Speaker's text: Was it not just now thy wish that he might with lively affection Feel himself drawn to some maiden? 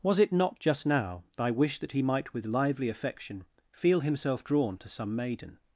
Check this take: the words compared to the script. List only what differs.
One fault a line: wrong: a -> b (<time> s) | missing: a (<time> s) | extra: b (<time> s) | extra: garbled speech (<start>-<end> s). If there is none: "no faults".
no faults